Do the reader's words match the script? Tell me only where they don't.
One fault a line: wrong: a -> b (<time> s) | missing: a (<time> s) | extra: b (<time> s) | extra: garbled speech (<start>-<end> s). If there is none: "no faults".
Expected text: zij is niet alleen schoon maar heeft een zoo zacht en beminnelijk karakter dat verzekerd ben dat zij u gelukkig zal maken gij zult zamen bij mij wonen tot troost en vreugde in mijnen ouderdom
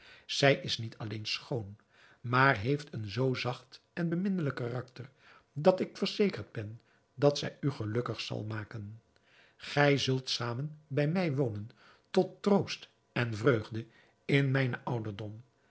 extra: ik (5.8 s)